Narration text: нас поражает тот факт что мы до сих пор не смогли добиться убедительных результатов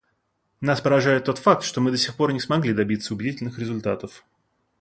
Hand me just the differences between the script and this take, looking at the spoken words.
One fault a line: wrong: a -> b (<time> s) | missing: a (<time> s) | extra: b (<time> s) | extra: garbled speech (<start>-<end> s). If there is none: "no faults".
no faults